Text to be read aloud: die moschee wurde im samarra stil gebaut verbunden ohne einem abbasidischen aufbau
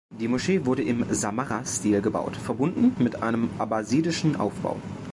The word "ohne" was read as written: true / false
false